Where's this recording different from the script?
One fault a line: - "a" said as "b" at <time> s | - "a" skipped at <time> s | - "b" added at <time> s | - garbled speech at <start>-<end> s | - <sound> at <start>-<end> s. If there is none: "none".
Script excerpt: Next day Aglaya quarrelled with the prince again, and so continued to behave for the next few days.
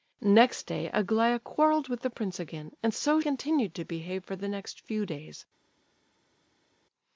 none